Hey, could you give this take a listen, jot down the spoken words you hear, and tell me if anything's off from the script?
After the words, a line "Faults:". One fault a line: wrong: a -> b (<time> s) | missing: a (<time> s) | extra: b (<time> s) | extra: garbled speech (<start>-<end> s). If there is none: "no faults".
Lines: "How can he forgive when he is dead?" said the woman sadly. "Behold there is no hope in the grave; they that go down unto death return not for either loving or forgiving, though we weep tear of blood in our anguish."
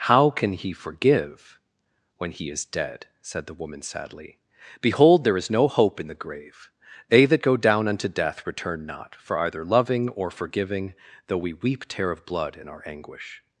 "How can he forgive when he is dead?" said the woman sadly. "Behold there is no hope in the grave; they that go down unto death return not for either loving or forgiving, though we weep tear of blood in our anguish."
Faults:
no faults